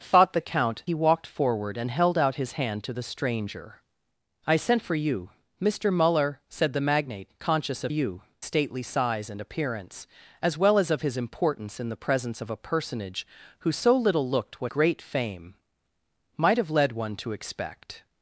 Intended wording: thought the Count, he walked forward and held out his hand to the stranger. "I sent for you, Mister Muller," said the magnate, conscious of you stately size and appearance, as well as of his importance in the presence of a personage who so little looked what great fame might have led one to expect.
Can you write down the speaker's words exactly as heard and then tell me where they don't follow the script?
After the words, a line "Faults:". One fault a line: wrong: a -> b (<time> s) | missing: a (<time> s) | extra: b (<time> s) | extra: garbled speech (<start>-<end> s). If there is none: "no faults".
thought the Count, he walked forward and held out his hand to the stranger. "I sent for you, Mister Muller," said the magnate, conscious of you stately size and appearance, as well as of his importance in the presence of a personage who so little looked what great fame might have led one to expect.
Faults:
no faults